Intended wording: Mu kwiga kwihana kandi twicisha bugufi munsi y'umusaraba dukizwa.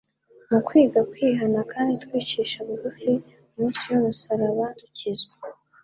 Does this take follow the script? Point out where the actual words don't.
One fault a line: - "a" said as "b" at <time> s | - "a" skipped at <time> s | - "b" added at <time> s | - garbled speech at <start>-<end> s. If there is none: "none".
none